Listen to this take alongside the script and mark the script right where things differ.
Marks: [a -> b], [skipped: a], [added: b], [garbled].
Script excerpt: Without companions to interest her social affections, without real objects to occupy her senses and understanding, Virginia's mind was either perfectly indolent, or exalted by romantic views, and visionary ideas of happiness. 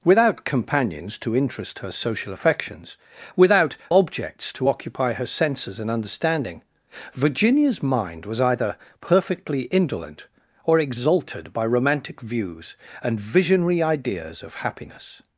Without companions to interest her social affections, without [skipped: real] objects to occupy her senses and understanding, Virginia's mind was either perfectly indolent, or exalted by romantic views, and visionary ideas of happiness.